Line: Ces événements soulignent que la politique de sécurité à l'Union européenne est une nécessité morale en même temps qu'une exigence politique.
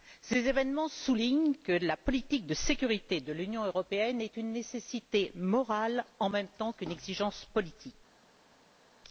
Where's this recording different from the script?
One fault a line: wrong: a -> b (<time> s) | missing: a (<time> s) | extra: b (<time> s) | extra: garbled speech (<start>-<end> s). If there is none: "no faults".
wrong: à -> de (3.2 s)